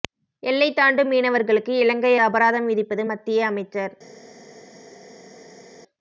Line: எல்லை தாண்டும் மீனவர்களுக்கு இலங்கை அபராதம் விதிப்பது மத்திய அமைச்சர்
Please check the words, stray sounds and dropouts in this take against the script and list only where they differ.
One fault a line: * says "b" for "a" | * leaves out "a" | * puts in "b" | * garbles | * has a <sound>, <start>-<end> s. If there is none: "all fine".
all fine